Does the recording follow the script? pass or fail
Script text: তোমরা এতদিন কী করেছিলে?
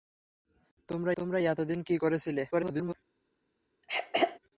fail